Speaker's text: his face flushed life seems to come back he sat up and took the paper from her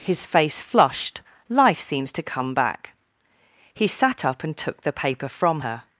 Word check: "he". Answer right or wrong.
right